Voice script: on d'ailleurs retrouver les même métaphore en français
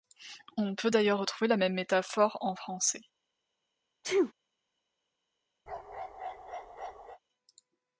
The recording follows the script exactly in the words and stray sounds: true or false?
false